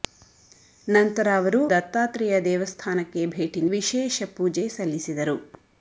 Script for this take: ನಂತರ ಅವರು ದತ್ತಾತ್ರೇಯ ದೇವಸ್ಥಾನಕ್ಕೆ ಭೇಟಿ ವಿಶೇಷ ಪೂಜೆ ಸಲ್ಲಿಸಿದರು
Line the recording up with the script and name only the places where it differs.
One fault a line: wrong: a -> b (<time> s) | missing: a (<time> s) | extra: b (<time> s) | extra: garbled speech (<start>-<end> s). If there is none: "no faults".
no faults